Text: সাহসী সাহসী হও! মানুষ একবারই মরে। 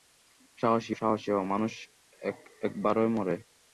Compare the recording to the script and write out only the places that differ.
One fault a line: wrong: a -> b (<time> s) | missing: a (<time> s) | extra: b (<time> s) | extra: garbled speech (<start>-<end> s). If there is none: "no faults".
no faults